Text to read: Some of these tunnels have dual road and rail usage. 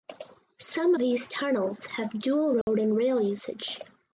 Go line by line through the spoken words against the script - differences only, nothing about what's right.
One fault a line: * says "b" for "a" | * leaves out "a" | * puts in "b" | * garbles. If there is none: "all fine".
* leaves out "of"